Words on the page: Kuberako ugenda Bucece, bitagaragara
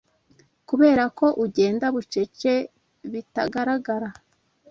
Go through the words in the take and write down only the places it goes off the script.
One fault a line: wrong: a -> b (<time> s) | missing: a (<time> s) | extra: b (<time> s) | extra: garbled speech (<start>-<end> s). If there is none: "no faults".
no faults